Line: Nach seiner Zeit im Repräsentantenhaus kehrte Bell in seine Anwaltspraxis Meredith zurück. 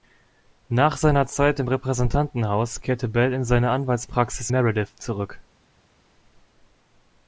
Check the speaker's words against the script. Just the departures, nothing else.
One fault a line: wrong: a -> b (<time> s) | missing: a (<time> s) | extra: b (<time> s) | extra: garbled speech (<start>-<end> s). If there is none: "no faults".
no faults